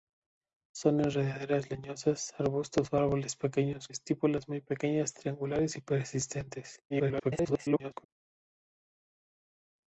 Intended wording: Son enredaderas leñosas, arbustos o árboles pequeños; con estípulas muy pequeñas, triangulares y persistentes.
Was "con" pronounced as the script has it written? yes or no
no